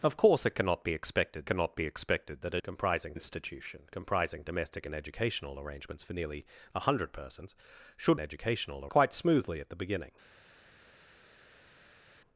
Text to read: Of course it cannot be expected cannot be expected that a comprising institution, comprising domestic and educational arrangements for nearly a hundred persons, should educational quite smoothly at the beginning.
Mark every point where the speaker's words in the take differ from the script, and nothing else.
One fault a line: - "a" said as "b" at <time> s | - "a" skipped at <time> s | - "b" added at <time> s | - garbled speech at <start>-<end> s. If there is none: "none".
none